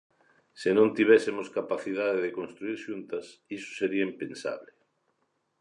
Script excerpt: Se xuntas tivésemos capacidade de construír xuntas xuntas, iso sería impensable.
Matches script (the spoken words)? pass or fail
fail